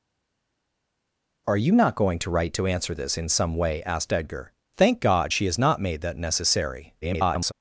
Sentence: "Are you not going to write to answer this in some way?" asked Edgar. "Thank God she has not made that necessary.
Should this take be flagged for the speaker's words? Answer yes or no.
yes